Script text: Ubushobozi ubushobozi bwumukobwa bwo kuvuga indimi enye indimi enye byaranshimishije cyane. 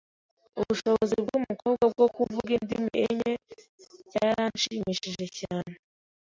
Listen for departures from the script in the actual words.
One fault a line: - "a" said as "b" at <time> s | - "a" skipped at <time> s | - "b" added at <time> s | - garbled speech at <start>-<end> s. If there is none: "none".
- "ubushobozi" skipped at 1.1 s
- "indimi enye" skipped at 3.3 s